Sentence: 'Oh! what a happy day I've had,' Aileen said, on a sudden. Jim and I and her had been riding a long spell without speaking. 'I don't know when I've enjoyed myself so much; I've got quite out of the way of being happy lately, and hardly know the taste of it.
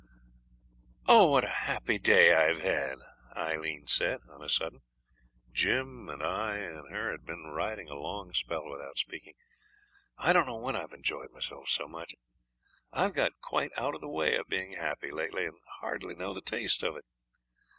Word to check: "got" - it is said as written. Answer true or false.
true